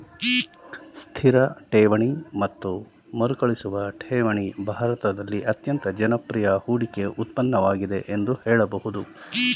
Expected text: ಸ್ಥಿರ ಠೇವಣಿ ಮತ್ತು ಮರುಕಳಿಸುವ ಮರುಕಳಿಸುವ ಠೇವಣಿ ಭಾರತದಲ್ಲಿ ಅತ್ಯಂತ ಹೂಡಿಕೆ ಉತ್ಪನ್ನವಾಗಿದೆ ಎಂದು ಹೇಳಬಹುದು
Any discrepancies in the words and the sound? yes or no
yes